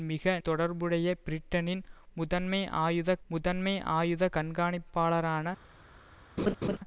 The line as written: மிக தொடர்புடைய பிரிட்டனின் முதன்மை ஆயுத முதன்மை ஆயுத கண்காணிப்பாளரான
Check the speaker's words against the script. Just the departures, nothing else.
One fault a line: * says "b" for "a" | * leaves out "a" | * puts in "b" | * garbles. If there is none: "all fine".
all fine